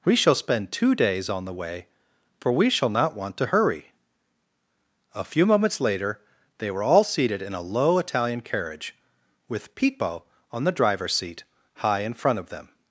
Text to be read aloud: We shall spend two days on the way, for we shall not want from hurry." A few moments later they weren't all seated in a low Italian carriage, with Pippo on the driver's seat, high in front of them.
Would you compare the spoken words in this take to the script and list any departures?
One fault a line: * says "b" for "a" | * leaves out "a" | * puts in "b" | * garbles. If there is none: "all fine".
* says "to" for "from"
* says "were" for "weren't"